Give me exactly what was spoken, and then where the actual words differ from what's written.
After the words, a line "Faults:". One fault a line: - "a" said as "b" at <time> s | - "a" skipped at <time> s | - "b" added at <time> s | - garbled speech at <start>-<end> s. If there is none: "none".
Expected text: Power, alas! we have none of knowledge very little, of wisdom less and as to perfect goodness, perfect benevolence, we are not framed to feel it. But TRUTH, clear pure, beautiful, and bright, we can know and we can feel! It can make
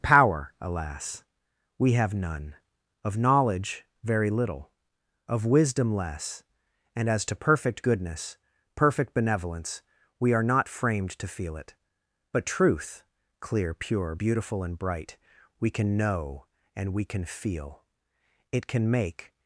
Power, alas! we have none of knowledge very little, of wisdom less and as to perfect goodness, perfect benevolence, we are not framed to feel it. But TRUTH, clear pure, beautiful, and bright, we can know and we can feel! It can make
Faults:
none